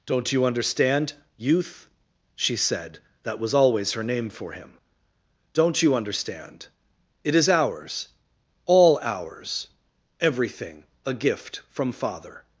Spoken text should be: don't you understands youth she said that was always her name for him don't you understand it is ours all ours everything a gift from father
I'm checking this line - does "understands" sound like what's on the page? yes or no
no